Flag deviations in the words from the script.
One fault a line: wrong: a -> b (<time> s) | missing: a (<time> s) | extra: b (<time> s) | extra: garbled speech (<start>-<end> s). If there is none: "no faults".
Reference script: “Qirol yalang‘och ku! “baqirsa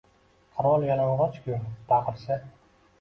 no faults